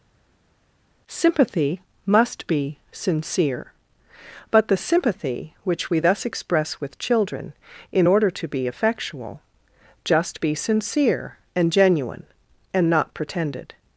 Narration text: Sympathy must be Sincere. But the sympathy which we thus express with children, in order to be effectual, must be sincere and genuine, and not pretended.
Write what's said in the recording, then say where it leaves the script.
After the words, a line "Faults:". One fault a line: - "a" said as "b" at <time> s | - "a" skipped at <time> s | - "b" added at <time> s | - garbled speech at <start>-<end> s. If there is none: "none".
Sympathy must be Sincere. But the sympathy which we thus express with children, in order to be effectual, just be sincere and genuine, and not pretended.
Faults:
- "must" said as "just" at 10.0 s